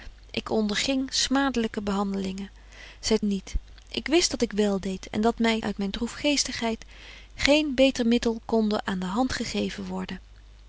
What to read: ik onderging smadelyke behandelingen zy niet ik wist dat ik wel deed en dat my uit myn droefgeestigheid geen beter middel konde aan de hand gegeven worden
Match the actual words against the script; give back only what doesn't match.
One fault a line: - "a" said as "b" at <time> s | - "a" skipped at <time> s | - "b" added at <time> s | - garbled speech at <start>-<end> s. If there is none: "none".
none